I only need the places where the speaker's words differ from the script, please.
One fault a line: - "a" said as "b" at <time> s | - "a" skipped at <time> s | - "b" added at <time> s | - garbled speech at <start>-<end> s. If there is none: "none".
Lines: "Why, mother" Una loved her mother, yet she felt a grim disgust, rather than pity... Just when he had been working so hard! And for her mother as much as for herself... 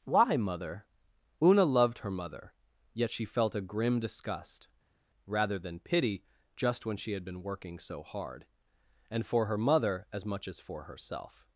- "he" said as "she" at 7.0 s